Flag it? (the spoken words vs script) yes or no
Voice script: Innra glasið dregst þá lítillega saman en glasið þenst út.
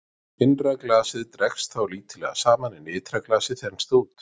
yes